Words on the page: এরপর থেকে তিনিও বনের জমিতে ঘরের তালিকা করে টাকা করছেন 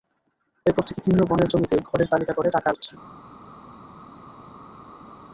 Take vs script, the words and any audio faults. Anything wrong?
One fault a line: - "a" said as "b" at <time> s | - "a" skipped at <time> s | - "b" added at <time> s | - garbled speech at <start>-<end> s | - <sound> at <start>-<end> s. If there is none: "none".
none